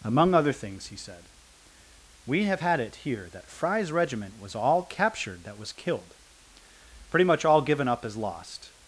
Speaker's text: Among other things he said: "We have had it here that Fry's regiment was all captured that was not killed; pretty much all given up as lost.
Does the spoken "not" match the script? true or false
false